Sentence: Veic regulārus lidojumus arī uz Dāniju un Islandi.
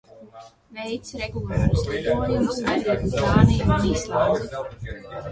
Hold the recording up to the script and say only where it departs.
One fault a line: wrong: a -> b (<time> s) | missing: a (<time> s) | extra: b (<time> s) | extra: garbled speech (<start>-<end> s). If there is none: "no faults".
no faults